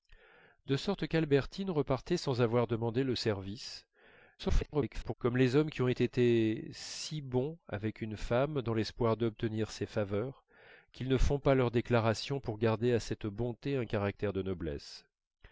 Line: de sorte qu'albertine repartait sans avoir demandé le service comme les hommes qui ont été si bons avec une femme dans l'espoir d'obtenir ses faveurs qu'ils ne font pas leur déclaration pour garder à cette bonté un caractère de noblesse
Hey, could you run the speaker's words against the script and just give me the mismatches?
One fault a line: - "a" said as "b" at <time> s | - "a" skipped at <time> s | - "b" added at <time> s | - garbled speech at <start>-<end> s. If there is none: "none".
- garbled speech at 4.4-5.1 s